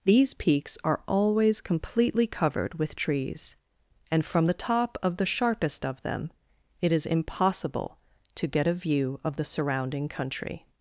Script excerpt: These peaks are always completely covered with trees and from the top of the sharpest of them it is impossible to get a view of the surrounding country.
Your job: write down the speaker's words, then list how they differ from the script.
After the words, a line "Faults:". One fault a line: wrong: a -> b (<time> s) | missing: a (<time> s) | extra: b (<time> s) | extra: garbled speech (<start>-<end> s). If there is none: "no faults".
These peaks are always completely covered with trees and from the top of the sharpest of them it is impossible to get a view of the surrounding country.
Faults:
no faults